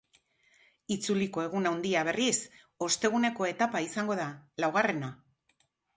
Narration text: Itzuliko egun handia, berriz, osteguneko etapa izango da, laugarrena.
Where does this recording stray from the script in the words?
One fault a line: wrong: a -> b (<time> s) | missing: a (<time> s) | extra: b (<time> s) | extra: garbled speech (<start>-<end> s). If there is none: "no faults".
no faults